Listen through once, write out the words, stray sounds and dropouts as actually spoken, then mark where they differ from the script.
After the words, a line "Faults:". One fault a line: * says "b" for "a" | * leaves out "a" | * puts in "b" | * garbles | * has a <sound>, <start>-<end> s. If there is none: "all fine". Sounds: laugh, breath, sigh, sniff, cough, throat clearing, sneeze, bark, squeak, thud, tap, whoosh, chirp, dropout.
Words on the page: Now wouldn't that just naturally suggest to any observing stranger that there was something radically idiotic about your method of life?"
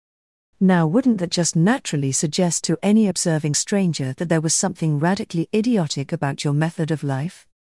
Now wouldn't that just naturally suggest to any observing stranger that there was something radically idiotic about your method of life?"
Faults:
all fine